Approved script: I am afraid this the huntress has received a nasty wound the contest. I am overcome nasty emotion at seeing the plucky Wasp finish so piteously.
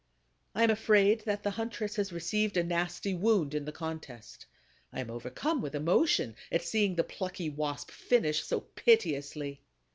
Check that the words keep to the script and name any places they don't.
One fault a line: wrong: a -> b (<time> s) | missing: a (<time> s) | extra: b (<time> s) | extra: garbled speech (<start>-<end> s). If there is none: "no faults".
wrong: this -> that (1.2 s)
extra: in (3.5 s)
wrong: nasty -> with (5.6 s)